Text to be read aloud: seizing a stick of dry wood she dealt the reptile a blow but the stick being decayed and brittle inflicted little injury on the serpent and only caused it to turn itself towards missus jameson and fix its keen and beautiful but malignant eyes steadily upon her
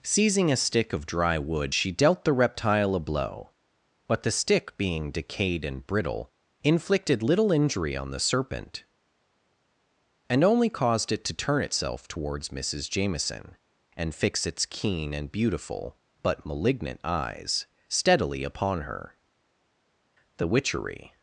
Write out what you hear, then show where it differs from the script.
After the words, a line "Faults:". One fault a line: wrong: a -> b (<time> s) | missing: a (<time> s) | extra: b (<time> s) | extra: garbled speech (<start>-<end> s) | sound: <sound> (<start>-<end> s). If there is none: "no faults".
seizing a stick of dry wood she dealt the reptile a blow but the stick being decayed and brittle inflicted little injury on the serpent and only caused it to turn itself towards missus jameson and fix its keen and beautiful but malignant eyes steadily upon her the witchery
Faults:
extra: the witchery (20.4 s)